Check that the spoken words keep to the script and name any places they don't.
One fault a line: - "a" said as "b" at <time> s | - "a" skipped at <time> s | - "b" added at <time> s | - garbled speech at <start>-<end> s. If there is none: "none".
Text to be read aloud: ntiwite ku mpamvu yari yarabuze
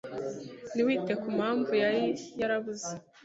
none